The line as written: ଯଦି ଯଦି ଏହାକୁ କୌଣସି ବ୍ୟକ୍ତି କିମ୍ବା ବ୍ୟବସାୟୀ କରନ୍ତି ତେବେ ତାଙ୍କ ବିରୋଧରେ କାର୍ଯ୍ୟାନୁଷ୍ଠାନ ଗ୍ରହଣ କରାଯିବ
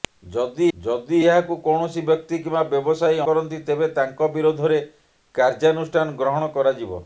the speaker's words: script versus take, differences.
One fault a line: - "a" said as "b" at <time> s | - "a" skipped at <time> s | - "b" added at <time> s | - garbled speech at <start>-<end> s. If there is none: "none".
none